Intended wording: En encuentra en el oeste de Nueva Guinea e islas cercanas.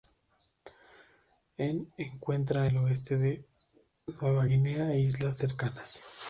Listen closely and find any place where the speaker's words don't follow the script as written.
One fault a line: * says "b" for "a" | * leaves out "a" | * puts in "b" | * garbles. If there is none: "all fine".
* leaves out "en"